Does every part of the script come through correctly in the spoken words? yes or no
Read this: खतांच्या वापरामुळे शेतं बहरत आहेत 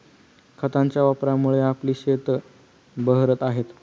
no